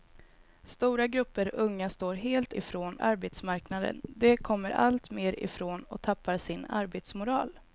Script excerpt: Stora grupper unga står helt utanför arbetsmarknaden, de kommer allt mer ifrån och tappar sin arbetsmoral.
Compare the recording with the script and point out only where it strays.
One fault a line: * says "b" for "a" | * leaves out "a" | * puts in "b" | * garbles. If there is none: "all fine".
* says "ifrån" for "utanför"